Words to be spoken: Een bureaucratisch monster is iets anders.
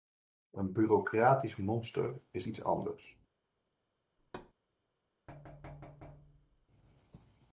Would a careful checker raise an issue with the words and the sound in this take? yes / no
yes